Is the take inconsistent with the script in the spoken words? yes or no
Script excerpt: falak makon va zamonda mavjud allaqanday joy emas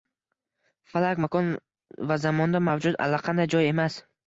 no